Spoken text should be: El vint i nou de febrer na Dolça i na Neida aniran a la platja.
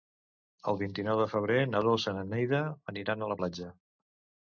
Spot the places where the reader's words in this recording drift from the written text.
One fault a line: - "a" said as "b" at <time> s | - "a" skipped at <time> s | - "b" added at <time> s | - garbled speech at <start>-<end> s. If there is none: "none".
none